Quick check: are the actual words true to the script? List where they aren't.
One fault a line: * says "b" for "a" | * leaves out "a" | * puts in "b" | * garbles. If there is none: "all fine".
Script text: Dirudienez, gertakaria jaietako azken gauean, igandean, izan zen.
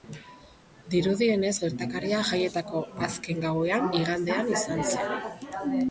all fine